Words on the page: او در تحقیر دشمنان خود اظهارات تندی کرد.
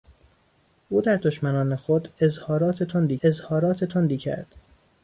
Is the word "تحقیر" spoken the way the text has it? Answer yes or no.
no